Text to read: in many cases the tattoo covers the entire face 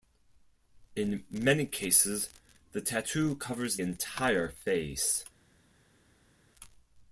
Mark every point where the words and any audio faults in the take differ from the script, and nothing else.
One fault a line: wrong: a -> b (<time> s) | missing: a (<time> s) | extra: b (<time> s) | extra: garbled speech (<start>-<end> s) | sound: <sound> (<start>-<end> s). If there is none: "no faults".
missing: the (3.8 s)